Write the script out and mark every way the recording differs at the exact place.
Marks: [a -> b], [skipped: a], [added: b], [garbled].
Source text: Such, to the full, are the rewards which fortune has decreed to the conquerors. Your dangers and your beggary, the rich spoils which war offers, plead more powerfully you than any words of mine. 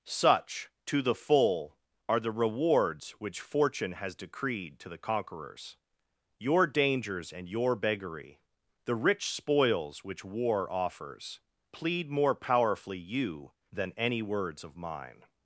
Such, to the full, are the rewards which fortune has decreed to the conquerors. Your dangers and your beggary, the rich spoils which war offers, plead more powerfully you than any words of mine.